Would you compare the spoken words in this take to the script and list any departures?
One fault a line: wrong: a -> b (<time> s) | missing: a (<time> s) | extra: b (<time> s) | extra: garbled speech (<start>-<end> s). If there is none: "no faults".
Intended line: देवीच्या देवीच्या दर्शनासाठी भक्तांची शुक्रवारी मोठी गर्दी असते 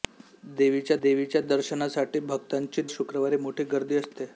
no faults